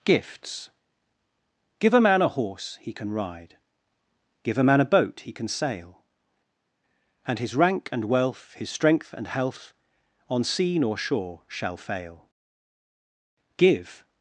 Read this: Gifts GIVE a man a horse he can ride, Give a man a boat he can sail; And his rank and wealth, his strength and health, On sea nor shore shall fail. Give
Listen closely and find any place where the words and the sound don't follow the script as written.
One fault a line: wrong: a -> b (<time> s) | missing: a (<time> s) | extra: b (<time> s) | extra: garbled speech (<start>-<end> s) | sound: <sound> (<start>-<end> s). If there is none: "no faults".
no faults